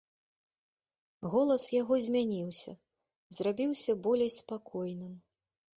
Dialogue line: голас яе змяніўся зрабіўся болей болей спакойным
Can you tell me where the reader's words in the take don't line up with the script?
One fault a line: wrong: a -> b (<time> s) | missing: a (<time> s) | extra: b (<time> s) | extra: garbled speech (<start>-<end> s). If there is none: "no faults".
wrong: яе -> яго (1.8 s)
missing: болей (4.3 s)